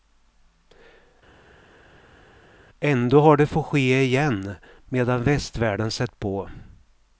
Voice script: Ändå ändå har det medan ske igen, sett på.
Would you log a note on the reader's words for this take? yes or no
yes